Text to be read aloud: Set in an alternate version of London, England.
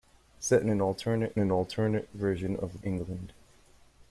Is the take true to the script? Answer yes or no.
no